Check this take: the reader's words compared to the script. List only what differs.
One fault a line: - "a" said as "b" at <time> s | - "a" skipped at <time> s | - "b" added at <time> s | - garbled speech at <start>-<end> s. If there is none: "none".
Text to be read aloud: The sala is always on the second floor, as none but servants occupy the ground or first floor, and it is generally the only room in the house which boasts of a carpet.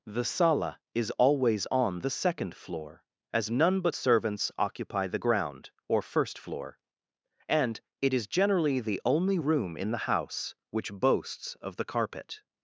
- "a" said as "the" at 11.8 s